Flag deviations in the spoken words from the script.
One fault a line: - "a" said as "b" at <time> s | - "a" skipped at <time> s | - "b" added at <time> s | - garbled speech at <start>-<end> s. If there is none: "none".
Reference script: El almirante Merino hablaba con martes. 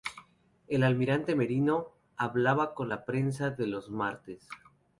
- "la prensa los" added at 2.9 s